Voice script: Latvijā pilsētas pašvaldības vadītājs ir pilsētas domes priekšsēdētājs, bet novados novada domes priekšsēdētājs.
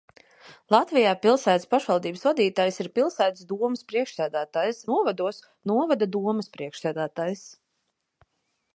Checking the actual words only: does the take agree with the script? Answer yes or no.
no